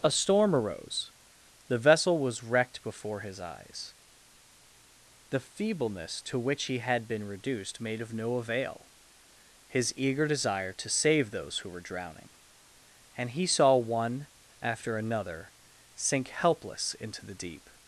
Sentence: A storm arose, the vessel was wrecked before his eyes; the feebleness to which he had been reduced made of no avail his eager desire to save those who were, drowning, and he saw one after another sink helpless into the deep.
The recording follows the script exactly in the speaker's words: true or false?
true